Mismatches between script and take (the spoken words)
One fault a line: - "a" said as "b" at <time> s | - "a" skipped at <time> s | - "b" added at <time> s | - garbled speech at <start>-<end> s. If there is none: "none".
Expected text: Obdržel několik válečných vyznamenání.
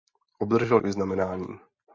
- "několik válečných" skipped at 0.8 s